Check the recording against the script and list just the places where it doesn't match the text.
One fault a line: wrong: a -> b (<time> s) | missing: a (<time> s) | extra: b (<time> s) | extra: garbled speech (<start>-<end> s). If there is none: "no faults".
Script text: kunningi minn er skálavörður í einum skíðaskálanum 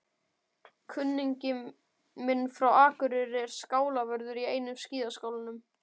extra: frá akureyri (2.6 s)